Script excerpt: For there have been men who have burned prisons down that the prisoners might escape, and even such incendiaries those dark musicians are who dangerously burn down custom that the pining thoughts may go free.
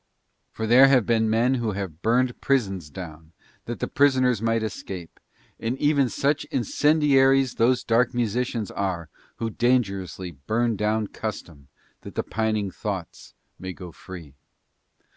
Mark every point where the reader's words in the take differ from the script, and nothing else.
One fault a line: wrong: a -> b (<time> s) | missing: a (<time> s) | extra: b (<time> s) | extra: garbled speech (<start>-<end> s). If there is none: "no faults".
no faults